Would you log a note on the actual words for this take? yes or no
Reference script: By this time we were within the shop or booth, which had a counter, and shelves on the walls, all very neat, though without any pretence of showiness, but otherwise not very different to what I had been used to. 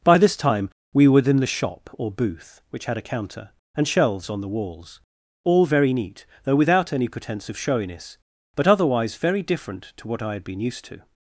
yes